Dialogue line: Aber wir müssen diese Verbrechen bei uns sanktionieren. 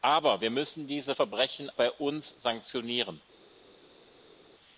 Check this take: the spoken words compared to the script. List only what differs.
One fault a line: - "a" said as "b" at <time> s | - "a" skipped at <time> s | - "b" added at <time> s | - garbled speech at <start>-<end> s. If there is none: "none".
none